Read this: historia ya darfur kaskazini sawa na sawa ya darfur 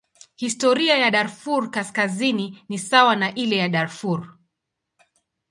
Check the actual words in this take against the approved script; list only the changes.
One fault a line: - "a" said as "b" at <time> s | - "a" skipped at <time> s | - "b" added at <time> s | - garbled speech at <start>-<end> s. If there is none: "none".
- "ni" added at 2.7 s
- "sawa" said as "ile" at 3.3 s